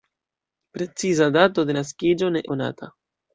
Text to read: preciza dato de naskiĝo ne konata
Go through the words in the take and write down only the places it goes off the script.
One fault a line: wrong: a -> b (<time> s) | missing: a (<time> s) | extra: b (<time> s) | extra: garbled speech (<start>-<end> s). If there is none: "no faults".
no faults